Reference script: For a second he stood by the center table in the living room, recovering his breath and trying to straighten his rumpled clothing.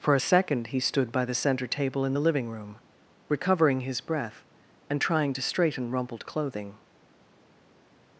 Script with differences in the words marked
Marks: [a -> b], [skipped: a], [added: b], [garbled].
For a second he stood by the center table in the living room, recovering his breath and trying to straighten [skipped: his] rumpled clothing.